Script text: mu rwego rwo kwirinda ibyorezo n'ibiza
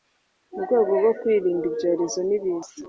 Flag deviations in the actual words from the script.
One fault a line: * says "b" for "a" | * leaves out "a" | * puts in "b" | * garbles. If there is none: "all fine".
all fine